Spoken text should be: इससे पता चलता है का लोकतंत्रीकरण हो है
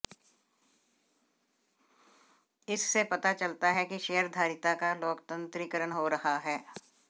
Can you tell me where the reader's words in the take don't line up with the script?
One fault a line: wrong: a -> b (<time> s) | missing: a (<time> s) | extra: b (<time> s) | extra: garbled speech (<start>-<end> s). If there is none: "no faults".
extra: कि शेयरधारिता (3.9 s)
extra: रहा (6.1 s)